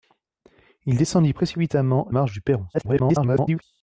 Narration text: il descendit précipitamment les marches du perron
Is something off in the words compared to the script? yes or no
yes